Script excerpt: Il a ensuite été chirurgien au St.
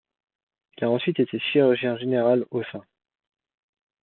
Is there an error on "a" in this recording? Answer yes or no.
no